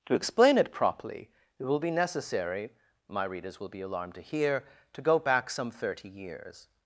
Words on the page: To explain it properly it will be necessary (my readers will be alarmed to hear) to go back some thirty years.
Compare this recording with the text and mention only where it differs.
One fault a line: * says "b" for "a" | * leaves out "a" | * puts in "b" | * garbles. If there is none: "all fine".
all fine